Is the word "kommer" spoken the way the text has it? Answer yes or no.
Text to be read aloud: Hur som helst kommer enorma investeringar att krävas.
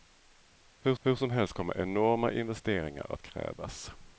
yes